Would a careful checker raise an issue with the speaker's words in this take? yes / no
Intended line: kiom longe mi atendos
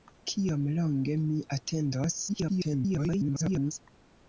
yes